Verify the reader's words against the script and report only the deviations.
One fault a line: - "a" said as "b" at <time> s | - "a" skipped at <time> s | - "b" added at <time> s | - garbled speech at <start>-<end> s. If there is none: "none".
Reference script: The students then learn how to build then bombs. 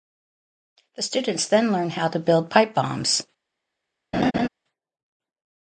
- "then" said as "pipe" at 2.5 s